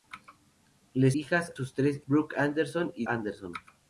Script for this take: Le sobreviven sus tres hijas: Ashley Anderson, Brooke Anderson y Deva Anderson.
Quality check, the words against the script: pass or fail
fail